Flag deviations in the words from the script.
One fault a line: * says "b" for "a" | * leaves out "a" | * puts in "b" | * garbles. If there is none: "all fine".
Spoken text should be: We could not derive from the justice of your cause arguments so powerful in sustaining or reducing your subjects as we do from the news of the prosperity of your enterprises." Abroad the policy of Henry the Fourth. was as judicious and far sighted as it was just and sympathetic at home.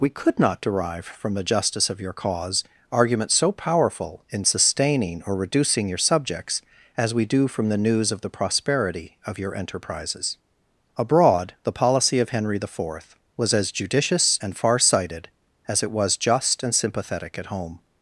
all fine